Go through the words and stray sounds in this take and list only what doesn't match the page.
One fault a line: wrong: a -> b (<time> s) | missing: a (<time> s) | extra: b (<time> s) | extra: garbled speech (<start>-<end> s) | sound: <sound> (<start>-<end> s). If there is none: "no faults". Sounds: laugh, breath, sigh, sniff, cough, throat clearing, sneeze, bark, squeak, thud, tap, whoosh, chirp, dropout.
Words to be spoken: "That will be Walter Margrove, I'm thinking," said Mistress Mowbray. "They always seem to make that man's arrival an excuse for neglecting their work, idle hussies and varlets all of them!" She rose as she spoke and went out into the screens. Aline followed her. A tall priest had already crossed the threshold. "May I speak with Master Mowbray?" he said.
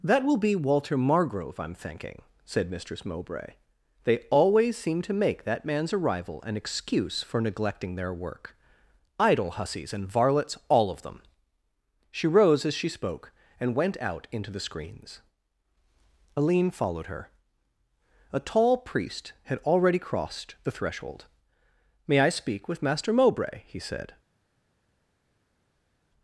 no faults